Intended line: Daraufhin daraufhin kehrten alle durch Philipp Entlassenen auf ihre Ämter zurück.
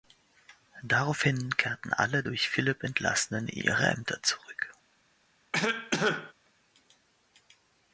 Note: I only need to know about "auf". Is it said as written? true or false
false